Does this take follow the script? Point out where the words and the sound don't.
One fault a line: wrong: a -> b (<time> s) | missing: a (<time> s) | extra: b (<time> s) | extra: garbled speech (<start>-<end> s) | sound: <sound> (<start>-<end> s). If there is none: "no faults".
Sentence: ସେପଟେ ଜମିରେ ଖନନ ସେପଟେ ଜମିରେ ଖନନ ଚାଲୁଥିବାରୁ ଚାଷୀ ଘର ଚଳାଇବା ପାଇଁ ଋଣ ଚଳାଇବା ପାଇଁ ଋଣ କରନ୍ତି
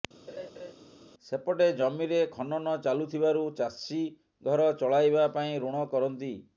sound: laugh (0.3-0.7 s)
missing: ସେପଟେ ଜମିରେ ଖନନ (2.7 s)
missing: ଚଳାଇବା ପାଇଁ ଋଣ (5.9 s)